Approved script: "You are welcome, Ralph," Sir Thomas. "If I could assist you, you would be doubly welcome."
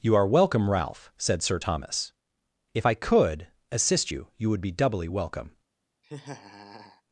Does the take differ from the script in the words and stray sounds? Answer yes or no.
yes